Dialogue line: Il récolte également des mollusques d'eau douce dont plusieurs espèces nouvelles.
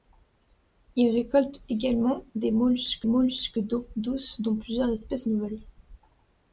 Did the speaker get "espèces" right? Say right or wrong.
right